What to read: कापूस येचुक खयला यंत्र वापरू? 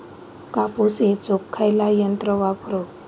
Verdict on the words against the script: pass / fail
pass